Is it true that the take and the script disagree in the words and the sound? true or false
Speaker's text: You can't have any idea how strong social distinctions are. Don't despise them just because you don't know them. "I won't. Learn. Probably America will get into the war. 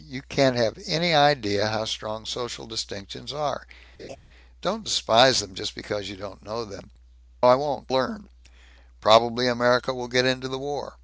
true